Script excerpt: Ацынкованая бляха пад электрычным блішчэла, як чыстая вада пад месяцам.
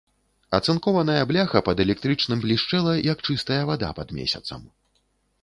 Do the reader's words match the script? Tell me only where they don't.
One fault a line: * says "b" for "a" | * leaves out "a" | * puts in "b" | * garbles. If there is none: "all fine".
all fine